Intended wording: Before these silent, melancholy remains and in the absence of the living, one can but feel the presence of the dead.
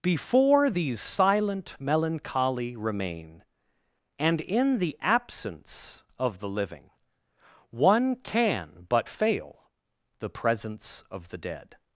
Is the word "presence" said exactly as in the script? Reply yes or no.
yes